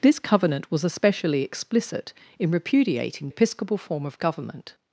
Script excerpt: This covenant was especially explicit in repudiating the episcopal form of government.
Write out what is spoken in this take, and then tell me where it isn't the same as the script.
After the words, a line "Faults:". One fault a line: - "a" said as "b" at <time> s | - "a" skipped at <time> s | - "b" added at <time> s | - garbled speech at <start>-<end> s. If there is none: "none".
This covenant was especially explicit in repudiating episcopal form of government.
Faults:
- "the" skipped at 3.3 s